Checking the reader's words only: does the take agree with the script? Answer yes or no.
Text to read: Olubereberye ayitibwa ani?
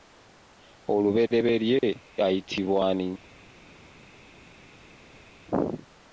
yes